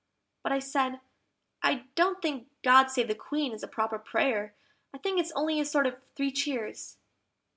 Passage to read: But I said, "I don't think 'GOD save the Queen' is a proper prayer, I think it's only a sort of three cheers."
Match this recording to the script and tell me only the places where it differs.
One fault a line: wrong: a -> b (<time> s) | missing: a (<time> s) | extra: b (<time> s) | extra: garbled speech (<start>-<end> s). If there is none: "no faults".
no faults